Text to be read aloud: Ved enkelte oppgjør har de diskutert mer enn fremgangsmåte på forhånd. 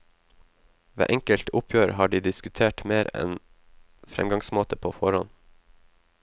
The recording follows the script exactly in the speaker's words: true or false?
true